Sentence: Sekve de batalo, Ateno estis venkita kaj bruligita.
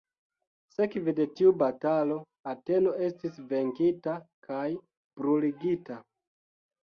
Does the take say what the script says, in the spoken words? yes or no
no